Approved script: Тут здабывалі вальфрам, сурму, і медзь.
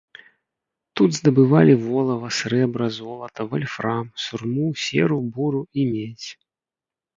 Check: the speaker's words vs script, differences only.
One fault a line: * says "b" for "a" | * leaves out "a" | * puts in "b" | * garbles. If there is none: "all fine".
* puts in "волава срэбра золата"
* puts in "серу буру"